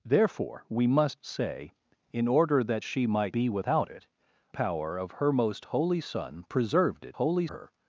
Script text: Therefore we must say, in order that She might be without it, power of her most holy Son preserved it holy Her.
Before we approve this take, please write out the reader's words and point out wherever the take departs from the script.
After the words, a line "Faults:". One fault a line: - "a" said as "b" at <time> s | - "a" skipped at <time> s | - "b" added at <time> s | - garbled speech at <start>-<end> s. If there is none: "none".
Therefore we must say, in order that She might be without it, power of her most holy Son preserved it holy Her.
Faults:
none